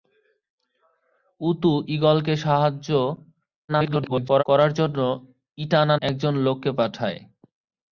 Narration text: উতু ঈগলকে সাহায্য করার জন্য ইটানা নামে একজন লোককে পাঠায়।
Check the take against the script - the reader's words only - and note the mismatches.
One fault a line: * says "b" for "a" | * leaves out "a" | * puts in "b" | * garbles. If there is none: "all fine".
* garbles
* leaves out "নামে"